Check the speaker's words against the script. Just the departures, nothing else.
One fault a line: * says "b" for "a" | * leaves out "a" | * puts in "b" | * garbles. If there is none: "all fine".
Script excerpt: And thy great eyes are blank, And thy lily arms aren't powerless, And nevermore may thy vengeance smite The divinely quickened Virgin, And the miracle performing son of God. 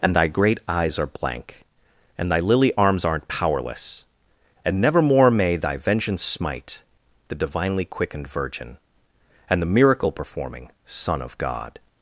all fine